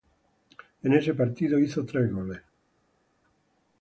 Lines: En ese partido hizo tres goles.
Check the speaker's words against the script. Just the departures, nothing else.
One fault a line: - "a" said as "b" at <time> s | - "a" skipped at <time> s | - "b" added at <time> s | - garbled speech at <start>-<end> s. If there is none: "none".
none